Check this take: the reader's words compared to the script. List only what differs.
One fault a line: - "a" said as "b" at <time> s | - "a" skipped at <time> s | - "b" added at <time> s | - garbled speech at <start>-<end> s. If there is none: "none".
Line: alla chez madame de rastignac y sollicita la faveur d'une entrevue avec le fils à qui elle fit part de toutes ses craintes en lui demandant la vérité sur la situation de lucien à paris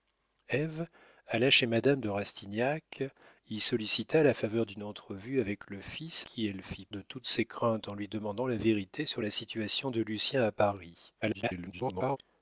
- "à" skipped at 6.3 s
- "part" skipped at 6.9 s
- garbled speech at 11.2-12.2 s